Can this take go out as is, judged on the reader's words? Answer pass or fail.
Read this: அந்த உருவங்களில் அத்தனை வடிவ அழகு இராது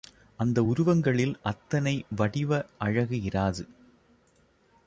pass